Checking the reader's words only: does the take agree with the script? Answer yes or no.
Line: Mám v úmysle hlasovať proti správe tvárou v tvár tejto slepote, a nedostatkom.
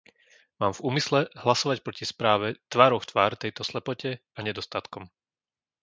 yes